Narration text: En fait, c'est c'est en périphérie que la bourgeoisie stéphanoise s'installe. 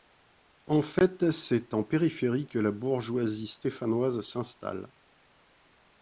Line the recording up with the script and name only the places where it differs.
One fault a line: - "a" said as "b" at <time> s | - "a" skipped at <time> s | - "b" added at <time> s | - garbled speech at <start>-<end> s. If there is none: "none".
- "c'est" skipped at 1.8 s